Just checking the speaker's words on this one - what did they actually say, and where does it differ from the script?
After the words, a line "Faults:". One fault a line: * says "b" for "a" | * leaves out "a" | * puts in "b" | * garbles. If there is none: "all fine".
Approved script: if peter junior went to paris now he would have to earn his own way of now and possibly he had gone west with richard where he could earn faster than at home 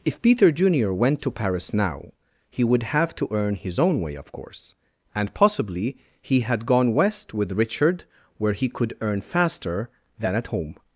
if peter junior went to paris now he would have to earn his own way of course and possibly he had gone west with richard where he could earn faster than at home
Faults:
* says "course" for "now"